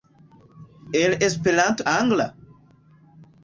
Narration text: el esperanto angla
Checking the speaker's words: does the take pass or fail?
pass